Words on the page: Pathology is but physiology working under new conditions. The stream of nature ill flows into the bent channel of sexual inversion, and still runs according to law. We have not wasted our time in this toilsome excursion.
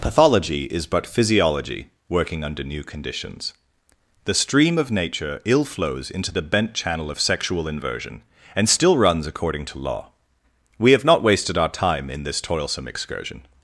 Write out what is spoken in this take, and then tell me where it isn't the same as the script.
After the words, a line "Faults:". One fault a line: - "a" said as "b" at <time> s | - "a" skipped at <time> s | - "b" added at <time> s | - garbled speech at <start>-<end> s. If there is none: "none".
Pathology is but physiology working under new conditions. The stream of nature ill flows into the bent channel of sexual inversion, and still runs according to law. We have not wasted our time in this toilsome excursion.
Faults:
none